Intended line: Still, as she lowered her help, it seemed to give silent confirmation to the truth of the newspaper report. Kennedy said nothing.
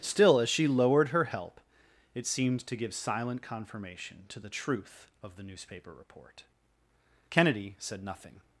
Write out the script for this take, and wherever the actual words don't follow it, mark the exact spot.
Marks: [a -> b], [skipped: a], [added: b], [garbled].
Still, as she lowered her help, it seemed to give silent confirmation to the truth of the newspaper report. Kennedy said nothing.